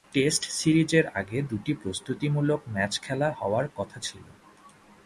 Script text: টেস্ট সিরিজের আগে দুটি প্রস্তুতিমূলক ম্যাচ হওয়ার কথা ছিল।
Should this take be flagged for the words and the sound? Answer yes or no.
yes